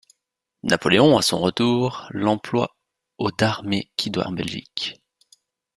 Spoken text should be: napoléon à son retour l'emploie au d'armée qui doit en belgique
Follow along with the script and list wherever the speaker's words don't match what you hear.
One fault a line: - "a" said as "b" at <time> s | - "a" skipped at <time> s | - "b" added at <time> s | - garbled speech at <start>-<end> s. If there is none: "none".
none